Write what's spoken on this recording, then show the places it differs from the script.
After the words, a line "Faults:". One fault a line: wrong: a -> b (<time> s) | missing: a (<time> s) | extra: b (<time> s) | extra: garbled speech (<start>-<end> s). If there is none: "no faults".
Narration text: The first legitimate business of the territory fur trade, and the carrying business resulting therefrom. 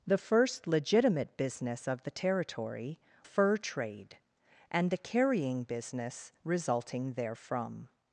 The first legitimate business of the territory fur trade, and the carrying business resulting therefrom.
Faults:
no faults